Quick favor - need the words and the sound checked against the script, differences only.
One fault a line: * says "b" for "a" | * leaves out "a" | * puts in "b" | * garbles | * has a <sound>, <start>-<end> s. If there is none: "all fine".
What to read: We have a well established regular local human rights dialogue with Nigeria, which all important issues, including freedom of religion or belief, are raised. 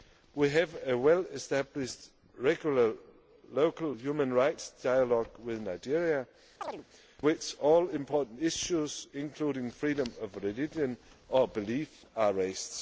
* has a chirp, 6.6-6.8 s